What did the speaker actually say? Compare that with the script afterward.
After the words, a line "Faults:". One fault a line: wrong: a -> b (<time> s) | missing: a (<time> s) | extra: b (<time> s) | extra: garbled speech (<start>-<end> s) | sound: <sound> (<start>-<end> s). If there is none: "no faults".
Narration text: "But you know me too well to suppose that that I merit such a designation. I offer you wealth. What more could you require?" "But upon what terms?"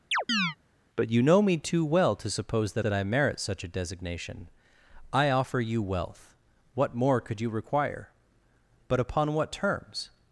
"But you know me too well to suppose that that I merit such a designation. I offer you wealth. What more could you require?" "But upon what terms?"
Faults:
sound: chirp (0.1-0.6 s)